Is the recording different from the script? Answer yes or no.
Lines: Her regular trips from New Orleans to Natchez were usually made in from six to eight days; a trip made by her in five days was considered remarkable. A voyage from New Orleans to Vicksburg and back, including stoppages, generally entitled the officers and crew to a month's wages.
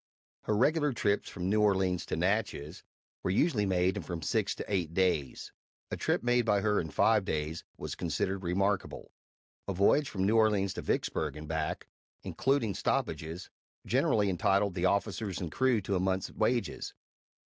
no